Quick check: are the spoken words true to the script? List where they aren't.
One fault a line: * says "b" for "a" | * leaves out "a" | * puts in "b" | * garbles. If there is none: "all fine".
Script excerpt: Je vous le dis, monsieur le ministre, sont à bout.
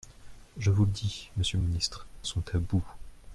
all fine